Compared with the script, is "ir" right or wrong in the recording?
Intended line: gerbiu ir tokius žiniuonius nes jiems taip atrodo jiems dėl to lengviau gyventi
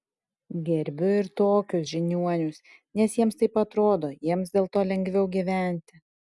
right